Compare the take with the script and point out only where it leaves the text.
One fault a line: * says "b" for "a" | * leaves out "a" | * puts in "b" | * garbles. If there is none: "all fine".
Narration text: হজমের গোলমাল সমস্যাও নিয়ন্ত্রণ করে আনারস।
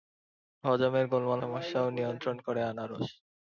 all fine